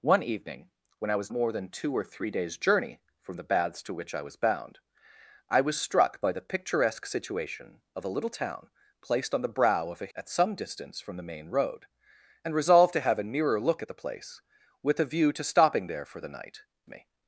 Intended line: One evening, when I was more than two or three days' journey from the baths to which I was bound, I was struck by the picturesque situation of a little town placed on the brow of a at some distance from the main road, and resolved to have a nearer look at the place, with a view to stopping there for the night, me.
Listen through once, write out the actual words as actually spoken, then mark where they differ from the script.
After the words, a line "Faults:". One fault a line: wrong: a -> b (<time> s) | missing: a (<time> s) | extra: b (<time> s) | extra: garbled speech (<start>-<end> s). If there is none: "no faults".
One evening, when I was more than two or three days' journey from the baths to which I was bound, I was struck by the picturesque situation of a little town placed on the brow of a at some distance from the main road, and resolved to have a nearer look at the place, with a view to stopping there for the night, me.
Faults:
no faults